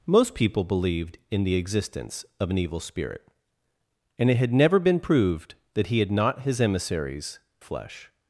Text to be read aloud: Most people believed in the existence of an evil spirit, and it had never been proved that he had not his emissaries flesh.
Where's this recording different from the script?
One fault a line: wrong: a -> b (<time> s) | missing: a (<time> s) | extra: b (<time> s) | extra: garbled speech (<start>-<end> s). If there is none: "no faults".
no faults